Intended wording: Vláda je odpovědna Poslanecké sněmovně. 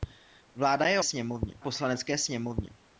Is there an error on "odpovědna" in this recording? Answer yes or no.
yes